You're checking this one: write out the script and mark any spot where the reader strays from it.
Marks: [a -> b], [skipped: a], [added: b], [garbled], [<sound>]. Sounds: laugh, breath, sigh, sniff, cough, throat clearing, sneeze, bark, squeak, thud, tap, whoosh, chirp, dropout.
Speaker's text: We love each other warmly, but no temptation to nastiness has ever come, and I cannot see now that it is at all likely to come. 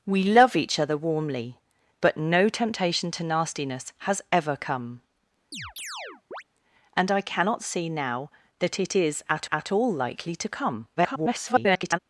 We love each other warmly, but no temptation to nastiness has ever come, [chirp] and I cannot see now that it is at [added: at] all likely to come. [garbled]